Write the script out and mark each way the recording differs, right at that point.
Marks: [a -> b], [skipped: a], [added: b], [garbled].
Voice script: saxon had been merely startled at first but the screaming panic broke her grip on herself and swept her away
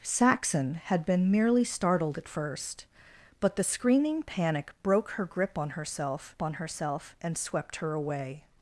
saxon had been merely startled at first but the screaming panic broke her grip on herself [added: on herself] and swept her away